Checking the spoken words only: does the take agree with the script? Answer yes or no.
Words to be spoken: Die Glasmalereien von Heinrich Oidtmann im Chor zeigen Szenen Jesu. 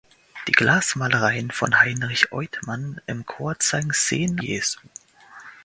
yes